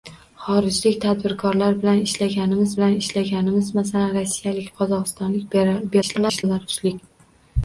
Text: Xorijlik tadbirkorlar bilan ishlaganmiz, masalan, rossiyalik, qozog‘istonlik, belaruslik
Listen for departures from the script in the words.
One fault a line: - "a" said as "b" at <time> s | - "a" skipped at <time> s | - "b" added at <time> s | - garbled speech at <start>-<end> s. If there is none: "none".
- "bilan ishlaganmiz" added at 2.8 s
- garbled speech at 6.0-6.4 s